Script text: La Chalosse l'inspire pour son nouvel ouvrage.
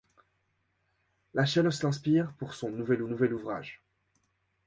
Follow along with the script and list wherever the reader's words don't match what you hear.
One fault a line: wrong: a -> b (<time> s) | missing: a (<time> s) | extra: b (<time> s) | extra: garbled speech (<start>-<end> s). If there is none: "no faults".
extra: nouvel (3.0 s)